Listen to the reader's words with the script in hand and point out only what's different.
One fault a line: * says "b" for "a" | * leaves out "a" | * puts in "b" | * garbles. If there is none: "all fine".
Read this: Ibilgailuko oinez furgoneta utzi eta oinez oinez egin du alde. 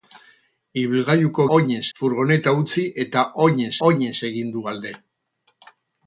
all fine